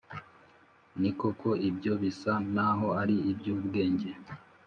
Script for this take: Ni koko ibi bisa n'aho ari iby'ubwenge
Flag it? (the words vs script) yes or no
yes